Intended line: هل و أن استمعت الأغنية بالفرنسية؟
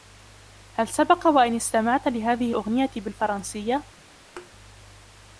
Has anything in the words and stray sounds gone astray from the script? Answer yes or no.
yes